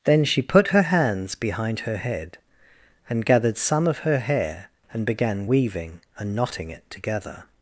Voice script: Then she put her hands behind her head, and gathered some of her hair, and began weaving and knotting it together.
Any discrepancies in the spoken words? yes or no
no